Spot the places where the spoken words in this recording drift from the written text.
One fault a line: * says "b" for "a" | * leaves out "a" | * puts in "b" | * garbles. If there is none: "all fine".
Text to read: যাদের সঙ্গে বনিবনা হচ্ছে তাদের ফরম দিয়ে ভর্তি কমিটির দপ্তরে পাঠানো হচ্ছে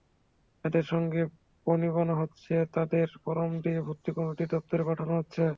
all fine